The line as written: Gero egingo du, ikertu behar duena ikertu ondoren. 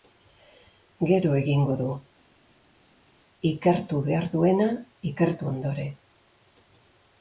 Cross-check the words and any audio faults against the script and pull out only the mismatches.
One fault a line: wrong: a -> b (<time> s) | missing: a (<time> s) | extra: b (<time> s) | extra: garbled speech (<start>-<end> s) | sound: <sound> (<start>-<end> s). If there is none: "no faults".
no faults